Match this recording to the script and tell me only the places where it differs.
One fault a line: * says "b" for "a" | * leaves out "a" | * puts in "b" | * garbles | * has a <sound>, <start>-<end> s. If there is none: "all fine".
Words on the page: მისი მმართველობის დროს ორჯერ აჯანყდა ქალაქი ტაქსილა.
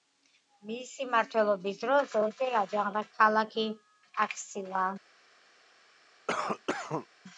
* has a cough, 6.3-7.1 s